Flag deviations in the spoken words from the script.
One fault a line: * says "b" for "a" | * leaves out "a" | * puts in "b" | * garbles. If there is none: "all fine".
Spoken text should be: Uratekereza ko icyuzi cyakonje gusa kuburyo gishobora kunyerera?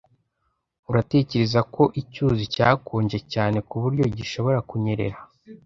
* says "cyane" for "gusa"